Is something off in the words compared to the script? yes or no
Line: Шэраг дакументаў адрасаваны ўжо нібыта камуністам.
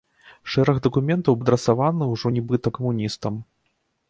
no